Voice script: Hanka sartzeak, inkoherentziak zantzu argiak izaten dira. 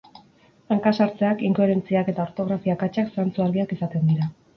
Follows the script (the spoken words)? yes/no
no